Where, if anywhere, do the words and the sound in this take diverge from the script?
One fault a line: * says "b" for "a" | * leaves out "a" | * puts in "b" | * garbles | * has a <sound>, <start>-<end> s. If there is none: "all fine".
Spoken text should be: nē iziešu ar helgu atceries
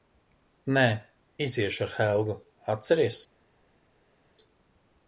all fine